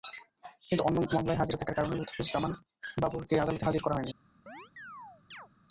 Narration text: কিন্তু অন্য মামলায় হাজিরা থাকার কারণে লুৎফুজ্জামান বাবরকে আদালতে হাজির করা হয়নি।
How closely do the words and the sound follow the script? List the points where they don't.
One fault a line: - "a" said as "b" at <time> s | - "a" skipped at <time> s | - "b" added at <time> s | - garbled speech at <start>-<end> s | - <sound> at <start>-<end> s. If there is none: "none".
- chirp at 4.5-5.5 s